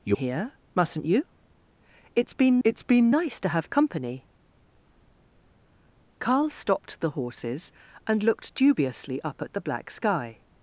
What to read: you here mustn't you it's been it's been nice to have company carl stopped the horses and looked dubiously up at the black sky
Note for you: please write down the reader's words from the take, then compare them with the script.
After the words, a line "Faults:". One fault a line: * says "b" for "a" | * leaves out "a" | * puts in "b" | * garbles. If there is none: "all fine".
you here mustn't you it's been it's been nice to have company carl stopped the horses and looked dubiously up at the black sky
Faults:
all fine